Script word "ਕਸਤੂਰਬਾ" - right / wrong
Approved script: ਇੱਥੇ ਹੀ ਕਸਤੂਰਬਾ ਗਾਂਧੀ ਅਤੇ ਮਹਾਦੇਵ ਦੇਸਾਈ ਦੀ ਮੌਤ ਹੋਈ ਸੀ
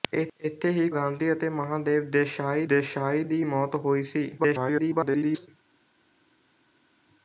wrong